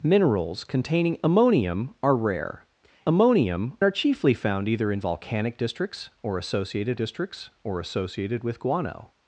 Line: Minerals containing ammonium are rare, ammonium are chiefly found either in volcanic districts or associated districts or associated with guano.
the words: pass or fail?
pass